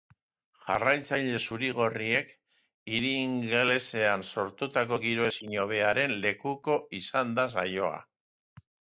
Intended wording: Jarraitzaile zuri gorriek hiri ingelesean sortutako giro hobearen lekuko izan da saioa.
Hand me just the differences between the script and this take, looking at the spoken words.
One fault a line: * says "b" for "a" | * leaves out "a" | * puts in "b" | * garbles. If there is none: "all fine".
* puts in "ezin"